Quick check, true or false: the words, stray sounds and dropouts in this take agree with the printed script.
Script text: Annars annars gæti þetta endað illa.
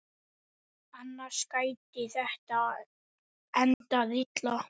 false